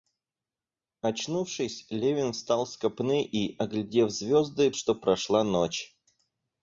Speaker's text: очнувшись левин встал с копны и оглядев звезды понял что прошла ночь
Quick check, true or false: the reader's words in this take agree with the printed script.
false